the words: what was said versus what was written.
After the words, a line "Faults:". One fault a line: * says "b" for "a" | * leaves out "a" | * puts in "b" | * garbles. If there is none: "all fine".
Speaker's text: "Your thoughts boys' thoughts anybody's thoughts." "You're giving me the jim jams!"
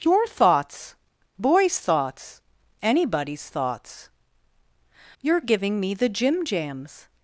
"Your thoughts boys' thoughts anybody's thoughts." "You're giving me the jim jams!"
Faults:
all fine